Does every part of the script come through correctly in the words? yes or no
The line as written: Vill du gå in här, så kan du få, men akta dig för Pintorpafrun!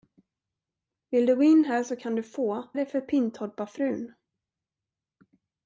no